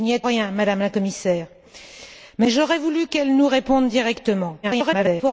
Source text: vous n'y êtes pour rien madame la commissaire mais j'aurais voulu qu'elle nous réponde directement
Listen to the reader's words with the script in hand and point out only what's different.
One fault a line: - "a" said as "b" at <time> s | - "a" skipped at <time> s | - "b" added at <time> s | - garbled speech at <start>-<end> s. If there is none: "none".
- "pour" skipped at 0.2 s
- garbled speech at 4.6-5.3 s